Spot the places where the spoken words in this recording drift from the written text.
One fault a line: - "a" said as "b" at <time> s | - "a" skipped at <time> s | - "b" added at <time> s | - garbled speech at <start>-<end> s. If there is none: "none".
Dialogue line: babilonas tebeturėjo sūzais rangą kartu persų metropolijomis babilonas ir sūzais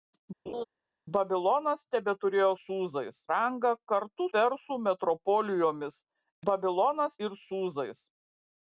none